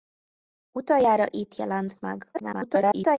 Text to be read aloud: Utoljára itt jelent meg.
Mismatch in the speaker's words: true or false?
true